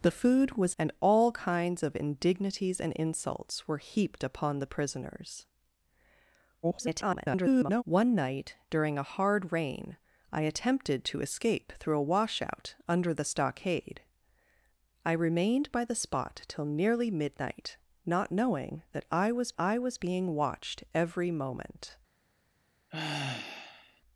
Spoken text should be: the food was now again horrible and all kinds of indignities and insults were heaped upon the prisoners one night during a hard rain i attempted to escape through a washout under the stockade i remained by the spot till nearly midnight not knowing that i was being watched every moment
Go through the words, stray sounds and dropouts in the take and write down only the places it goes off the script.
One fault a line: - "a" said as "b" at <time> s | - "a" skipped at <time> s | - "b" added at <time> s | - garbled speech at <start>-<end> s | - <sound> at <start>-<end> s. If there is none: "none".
- "now again horrible" skipped at 0.8 s
- garbled speech at 6.6-7.8 s
- "i was" added at 19.6 s
- sigh at 22.9-24.0 s